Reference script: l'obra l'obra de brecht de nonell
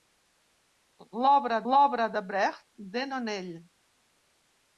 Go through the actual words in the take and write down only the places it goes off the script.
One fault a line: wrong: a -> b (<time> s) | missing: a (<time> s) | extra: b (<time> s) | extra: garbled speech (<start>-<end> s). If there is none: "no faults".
no faults